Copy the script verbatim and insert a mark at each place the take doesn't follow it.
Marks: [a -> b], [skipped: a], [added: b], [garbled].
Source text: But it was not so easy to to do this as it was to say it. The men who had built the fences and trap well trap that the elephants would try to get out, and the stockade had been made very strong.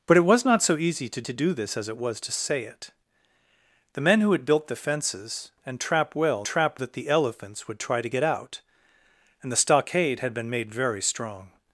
But it was not so easy to to do this as it was to say it. The men who had built the fences and trap well trap that the elephants would try to get out, and the stockade had been made very strong.